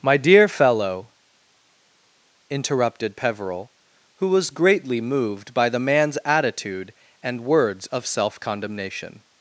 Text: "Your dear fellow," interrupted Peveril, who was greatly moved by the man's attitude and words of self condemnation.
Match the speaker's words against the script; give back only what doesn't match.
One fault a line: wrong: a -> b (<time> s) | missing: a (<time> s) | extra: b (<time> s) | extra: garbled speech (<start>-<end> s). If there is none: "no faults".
wrong: Your -> My (0.0 s)